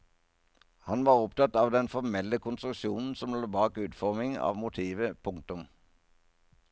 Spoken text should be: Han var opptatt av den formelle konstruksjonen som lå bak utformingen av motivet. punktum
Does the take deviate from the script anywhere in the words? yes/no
no